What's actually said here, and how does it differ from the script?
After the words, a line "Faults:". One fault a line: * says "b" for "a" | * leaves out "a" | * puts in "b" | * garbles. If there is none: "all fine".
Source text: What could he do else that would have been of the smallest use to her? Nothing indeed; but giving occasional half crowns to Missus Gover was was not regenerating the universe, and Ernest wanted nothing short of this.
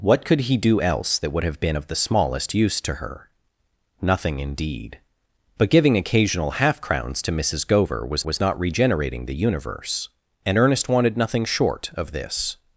What could he do else that would have been of the smallest use to her? Nothing indeed; but giving occasional half crowns to Missus Gover was was not regenerating the universe, and Ernest wanted nothing short of this.
Faults:
all fine